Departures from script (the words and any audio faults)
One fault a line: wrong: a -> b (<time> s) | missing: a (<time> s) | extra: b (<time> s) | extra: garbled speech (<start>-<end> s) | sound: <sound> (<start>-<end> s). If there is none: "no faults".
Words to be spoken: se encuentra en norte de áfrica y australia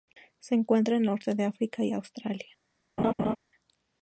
sound: laugh (3.0-3.4 s)